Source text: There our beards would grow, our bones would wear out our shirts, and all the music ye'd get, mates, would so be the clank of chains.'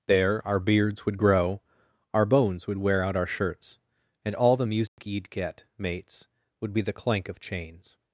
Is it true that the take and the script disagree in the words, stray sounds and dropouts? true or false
true